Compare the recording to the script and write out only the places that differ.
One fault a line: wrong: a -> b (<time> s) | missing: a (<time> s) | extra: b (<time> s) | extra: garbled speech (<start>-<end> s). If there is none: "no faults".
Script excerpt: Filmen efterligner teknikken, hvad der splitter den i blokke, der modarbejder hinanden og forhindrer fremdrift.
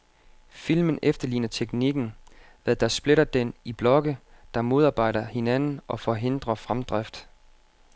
no faults